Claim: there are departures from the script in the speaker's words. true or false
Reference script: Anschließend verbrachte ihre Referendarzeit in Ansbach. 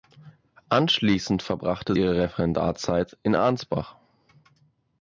false